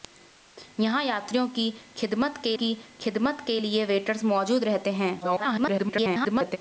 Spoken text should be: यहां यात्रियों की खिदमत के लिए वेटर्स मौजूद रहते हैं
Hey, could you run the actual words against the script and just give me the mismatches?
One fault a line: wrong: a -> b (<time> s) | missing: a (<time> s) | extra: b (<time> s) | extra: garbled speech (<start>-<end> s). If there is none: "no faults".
extra: की खिदमत के (2.5 s)
extra: garbled speech (5.2-6.6 s)